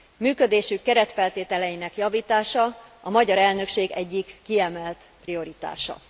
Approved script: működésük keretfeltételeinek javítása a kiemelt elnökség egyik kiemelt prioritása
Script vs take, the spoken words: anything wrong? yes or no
yes